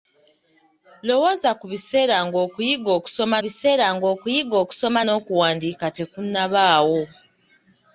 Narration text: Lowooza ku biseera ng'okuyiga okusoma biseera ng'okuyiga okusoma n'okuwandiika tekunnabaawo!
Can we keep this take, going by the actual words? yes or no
yes